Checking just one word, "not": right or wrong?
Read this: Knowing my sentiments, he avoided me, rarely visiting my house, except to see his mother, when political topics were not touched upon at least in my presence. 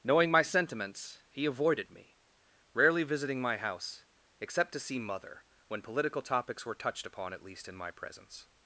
wrong